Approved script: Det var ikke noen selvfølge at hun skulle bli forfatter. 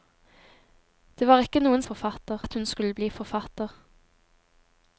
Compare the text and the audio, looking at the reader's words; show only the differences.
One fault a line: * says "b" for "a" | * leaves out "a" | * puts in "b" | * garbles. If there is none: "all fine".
* says "forfatter" for "selvfølge"